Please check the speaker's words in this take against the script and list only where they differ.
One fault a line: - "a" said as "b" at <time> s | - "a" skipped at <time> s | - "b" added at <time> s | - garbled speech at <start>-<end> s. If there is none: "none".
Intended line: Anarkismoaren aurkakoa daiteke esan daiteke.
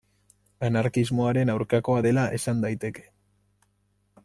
- "daiteke" said as "dela" at 2.1 s